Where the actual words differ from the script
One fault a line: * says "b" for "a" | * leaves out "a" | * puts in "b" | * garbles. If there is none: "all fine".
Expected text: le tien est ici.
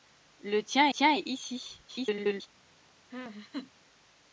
* puts in "tien"
* garbles